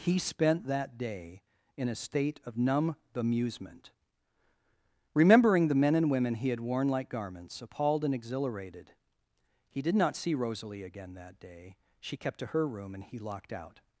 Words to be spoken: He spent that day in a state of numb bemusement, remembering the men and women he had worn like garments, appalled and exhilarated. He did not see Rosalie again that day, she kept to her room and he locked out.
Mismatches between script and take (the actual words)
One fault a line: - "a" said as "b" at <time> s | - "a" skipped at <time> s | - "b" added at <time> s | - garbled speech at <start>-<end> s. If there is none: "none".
none